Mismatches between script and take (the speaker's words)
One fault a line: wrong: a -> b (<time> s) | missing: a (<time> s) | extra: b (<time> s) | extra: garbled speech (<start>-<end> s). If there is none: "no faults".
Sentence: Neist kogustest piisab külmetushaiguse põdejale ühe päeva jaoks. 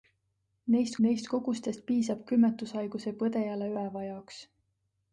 extra: neist (1.1 s)
missing: ühe (3.7 s)